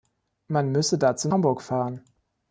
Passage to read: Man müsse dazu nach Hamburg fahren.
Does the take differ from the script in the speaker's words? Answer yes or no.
yes